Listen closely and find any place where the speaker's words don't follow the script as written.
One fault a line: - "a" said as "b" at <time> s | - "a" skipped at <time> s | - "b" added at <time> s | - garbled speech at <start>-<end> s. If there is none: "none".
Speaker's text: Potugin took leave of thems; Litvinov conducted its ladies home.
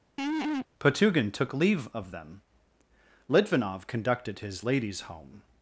- "thems" said as "them" at 2.1 s
- "its" said as "his" at 4.4 s